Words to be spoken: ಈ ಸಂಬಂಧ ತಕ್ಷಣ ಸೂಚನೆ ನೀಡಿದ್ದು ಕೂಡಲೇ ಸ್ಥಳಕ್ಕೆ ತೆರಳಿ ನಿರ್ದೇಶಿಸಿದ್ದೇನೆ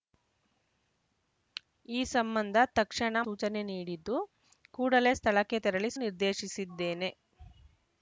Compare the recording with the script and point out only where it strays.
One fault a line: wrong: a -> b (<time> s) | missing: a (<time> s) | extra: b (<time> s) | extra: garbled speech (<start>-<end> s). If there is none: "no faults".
no faults